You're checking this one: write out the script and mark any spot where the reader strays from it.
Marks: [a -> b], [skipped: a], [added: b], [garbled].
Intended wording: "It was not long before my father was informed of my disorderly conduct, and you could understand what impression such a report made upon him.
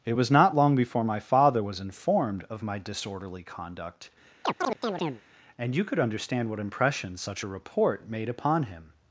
"It was not long before my father was informed of my disorderly conduct, and you could understand what impression such a report made upon him.